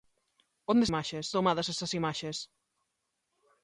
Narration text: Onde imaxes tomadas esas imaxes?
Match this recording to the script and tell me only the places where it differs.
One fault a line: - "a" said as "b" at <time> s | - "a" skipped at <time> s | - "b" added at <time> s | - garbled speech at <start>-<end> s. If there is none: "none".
none